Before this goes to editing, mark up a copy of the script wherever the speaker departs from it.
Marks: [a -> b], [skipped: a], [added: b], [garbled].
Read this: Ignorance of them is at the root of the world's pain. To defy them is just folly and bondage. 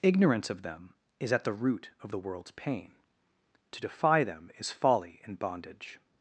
Ignorance of them is at the root of the world's pain. To defy them is [skipped: just] folly and bondage.